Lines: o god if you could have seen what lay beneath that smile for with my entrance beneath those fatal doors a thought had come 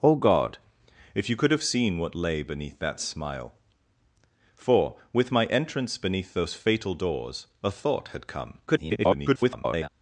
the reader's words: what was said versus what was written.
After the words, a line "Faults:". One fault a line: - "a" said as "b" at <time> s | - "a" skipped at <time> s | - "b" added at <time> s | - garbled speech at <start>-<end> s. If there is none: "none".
o god if you could have seen what lay beneath that smile for with my entrance beneath those fatal doors a thought had come [garbled]
Faults:
- garbled speech at 8.7-9.9 s